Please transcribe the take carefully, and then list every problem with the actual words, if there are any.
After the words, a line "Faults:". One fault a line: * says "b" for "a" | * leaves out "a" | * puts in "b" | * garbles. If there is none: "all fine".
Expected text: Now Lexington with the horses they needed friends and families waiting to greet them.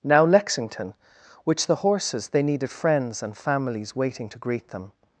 Now Lexington which the horses they needed friends and families waiting to greet them.
Faults:
* says "which" for "with"